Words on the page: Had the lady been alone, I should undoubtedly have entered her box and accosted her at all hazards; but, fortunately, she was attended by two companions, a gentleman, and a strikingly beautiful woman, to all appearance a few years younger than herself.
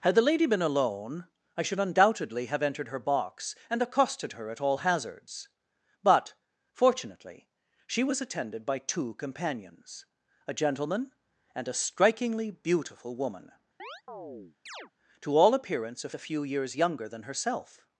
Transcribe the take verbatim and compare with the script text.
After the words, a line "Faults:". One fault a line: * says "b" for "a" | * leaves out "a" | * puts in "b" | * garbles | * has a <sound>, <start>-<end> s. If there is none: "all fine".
Had the lady been alone, I should undoubtedly have entered her box and accosted her at all hazards; but, fortunately, she was attended by two companions, a gentleman, and a strikingly beautiful woman, to all appearance a a few years younger than herself.
Faults:
* has a chirp, 13.8-14.9 s
* puts in "a"